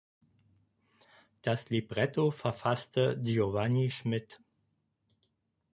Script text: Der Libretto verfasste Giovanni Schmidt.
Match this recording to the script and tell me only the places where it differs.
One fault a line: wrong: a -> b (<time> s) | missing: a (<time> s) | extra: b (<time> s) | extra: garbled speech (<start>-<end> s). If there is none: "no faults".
wrong: Der -> Das (1.4 s)